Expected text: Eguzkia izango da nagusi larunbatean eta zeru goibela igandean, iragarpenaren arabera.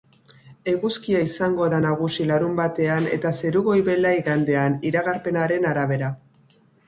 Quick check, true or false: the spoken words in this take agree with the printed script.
true